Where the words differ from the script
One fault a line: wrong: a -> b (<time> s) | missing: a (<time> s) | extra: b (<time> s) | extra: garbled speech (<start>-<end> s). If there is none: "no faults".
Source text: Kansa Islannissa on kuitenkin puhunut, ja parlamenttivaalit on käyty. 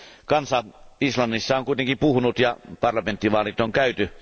no faults